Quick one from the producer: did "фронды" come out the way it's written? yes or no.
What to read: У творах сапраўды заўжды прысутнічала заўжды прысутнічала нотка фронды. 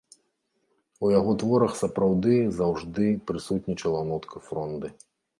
yes